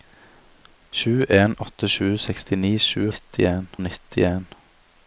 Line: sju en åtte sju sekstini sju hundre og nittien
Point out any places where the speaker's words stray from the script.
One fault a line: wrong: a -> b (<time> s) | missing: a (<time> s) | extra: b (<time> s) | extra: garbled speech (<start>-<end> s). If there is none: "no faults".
wrong: hundre -> nittien (3.1 s)